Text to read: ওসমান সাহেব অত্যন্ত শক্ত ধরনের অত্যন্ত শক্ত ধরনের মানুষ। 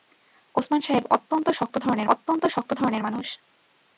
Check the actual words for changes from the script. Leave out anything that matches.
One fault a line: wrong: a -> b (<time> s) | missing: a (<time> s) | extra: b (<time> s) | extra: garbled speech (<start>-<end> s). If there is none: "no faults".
no faults